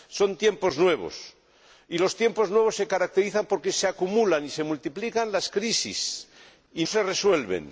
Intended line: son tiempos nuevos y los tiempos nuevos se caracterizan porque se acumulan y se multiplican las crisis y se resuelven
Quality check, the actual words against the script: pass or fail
pass